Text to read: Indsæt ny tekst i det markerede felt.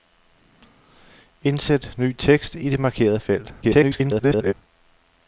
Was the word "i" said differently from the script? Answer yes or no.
no